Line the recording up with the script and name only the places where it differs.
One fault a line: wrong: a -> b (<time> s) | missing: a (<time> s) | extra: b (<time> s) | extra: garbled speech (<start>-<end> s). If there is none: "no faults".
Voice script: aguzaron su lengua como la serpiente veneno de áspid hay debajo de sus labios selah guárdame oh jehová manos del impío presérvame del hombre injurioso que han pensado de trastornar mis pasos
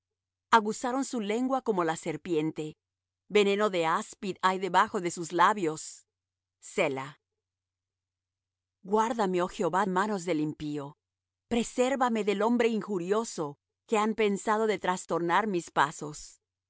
no faults